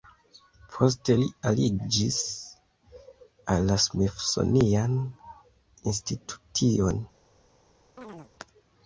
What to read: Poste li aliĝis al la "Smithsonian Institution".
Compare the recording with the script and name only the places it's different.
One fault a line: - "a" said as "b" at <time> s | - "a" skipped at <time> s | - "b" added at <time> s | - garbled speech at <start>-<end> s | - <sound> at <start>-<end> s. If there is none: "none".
- chirp at 8.0-8.3 s